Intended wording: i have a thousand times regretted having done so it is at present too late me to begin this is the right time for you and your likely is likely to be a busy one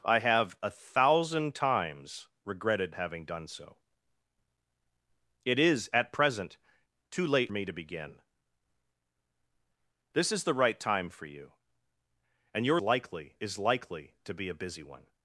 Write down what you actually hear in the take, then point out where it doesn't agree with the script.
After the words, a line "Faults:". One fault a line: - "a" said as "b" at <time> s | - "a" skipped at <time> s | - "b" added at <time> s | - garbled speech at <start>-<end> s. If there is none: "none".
i have a thousand times regretted having done so it is at present too late me to begin this is the right time for you and your likely is likely to be a busy one
Faults:
none